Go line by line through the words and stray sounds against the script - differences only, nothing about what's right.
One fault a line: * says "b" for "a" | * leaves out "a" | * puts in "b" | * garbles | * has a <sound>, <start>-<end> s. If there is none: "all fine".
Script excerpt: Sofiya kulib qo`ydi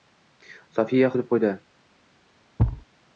* has a thud, 2.6-2.9 s